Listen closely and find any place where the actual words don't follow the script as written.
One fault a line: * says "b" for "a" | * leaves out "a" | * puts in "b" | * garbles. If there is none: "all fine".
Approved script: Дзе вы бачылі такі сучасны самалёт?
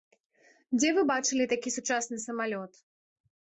all fine